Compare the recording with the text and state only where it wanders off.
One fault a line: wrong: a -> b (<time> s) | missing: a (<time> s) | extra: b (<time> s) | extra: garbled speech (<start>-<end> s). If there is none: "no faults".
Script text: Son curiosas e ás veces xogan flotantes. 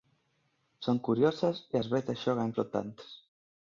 no faults